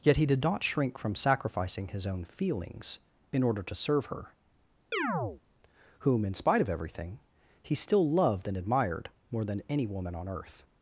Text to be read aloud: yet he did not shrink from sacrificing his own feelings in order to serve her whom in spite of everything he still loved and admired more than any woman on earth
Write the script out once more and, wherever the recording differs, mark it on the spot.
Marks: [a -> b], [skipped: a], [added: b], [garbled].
yet he did not shrink from sacrificing his own feelings in order to serve her whom in spite of everything he still loved and admired more than any woman on earth